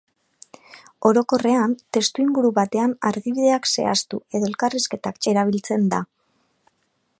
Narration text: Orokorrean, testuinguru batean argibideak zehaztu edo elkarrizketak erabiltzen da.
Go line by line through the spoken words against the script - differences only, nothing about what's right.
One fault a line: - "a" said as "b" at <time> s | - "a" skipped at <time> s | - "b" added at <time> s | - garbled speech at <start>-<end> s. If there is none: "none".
none